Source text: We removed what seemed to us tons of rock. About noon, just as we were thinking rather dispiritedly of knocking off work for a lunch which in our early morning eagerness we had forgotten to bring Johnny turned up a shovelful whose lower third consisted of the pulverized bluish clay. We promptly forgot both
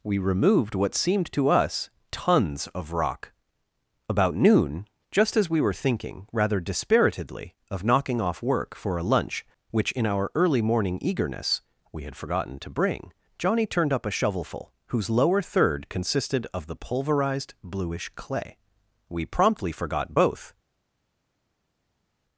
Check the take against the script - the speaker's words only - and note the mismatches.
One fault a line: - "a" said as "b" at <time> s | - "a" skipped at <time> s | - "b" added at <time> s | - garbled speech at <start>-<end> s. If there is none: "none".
none